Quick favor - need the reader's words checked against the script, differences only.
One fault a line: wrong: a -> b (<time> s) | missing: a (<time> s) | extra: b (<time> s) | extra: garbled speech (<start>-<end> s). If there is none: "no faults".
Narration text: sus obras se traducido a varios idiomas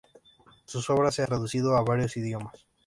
no faults